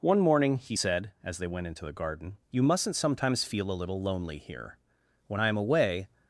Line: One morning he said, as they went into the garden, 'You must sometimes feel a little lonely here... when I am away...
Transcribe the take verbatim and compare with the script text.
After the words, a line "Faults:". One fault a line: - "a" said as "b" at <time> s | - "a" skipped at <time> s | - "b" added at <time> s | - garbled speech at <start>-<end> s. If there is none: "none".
One morning he said, as they went into the garden, 'You mustn't sometimes feel a little lonely here... when I am away...
Faults:
- "must" said as "mustn't" at 2.6 s